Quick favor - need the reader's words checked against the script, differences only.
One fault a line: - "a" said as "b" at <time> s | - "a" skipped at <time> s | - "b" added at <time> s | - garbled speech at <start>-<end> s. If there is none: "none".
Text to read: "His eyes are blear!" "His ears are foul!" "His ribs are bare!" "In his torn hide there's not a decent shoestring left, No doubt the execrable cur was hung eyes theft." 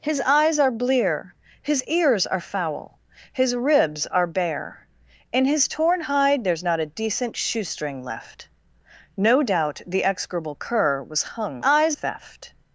none